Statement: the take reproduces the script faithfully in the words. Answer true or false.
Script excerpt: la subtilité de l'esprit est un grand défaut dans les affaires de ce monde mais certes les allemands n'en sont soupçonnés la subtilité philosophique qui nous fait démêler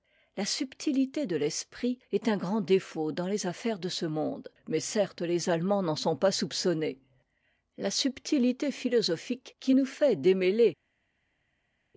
false